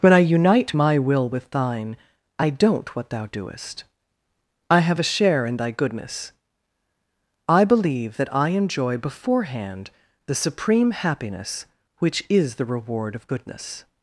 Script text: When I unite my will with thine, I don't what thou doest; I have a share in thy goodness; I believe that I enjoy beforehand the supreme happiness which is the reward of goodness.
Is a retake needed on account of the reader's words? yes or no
no